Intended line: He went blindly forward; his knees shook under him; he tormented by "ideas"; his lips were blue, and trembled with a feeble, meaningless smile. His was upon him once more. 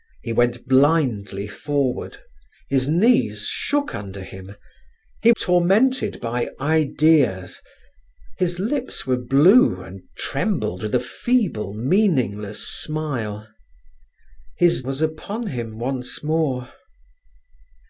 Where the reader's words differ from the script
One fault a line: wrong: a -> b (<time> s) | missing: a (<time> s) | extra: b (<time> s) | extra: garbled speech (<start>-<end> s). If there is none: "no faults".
no faults